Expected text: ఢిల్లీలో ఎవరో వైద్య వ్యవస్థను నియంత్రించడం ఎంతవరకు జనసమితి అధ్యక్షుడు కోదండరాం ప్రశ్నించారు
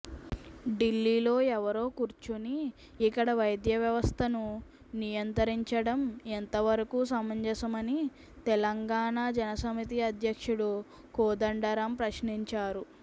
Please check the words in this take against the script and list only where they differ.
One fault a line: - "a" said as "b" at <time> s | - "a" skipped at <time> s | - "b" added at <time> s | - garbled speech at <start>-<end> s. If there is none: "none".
- "కూర్చుని ఇక్కడ" added at 2.0 s
- "సమంజసమని తెలంగాణ" added at 7.1 s